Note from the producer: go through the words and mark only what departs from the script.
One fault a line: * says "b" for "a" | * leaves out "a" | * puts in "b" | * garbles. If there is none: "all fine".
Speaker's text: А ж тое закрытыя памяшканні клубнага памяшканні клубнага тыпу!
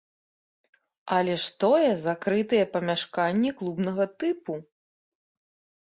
* says "Але" for "А"
* leaves out "памяшканні клубнага"